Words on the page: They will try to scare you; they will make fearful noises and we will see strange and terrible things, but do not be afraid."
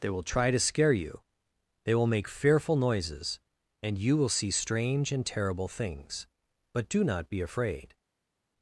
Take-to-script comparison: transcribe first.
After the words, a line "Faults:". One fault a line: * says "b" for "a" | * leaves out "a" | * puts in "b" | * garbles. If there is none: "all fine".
They will try to scare you; they will make fearful noises and you will see strange and terrible things, but do not be afraid."
Faults:
* says "you" for "we"